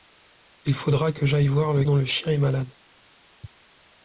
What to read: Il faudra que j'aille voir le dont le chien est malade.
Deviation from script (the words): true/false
false